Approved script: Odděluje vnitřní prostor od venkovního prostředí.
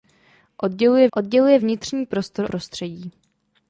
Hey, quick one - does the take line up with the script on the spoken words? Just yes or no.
no